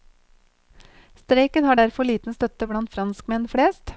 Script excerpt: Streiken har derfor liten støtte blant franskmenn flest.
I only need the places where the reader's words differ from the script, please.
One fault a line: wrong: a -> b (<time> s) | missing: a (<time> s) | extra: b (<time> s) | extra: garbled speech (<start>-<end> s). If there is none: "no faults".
no faults